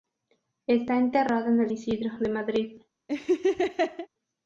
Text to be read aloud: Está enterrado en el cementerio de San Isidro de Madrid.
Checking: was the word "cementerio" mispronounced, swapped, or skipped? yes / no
yes